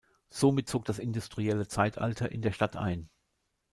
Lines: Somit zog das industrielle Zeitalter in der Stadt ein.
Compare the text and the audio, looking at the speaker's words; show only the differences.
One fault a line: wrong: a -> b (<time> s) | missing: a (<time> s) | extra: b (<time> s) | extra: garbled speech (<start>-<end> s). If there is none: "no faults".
no faults